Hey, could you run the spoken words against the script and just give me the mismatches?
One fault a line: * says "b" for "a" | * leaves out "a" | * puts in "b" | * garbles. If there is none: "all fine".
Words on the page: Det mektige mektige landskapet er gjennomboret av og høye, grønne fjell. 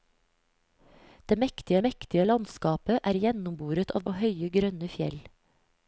all fine